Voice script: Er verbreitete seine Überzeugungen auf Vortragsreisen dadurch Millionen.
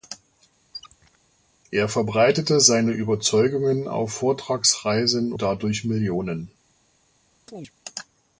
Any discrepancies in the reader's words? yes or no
no